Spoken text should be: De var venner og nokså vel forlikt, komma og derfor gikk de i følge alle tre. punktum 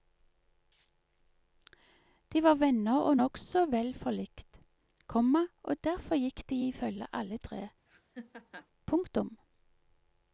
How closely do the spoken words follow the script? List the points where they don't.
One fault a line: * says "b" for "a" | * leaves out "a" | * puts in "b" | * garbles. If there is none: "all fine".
all fine